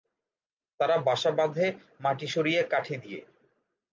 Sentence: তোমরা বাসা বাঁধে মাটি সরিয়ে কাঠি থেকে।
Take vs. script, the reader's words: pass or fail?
fail